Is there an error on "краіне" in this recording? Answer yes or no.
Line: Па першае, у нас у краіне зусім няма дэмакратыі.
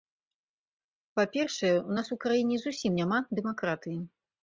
no